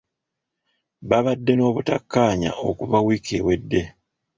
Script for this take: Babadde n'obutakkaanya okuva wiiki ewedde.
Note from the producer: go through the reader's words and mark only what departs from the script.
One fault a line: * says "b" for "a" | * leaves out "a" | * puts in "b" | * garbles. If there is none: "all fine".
all fine